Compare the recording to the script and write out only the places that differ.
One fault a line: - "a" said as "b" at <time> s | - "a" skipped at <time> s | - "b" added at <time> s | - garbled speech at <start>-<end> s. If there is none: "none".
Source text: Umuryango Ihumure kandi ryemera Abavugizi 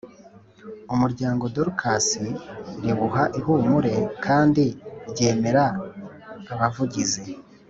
- "Dorcas riwuha" added at 1.6 s